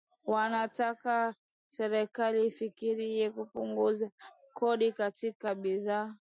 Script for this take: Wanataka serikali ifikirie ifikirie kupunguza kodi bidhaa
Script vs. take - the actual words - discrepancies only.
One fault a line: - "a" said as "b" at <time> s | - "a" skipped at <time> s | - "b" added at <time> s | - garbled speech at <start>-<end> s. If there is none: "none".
- "ifikirie" skipped at 3.3 s
- "katika" added at 4.9 s